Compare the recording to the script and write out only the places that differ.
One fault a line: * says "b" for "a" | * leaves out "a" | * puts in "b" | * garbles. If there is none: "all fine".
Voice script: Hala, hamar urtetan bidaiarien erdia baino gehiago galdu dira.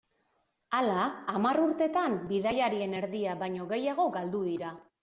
all fine